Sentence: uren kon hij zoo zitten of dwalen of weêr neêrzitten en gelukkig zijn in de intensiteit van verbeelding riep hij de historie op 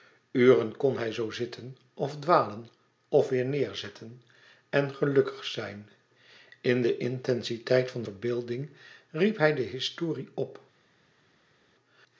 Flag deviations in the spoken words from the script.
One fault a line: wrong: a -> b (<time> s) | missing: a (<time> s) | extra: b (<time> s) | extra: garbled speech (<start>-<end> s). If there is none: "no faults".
no faults